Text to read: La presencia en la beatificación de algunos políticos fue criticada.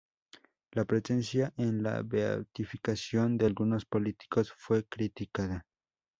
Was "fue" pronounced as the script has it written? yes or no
yes